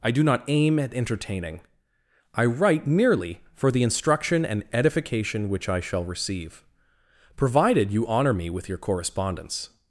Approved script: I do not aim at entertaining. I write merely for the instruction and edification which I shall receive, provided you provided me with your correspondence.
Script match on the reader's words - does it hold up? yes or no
no